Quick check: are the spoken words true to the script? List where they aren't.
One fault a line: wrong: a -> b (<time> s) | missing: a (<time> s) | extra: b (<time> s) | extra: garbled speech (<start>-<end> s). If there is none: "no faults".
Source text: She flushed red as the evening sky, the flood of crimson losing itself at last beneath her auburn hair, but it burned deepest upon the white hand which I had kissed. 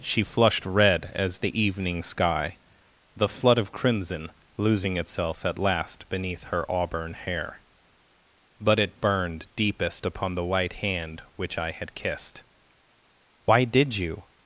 extra: Why did you (13.4 s)